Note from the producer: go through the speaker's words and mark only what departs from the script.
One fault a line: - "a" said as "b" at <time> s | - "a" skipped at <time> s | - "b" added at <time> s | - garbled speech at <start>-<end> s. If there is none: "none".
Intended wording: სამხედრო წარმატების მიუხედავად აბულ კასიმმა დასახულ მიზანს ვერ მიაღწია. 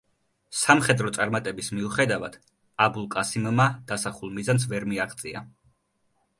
none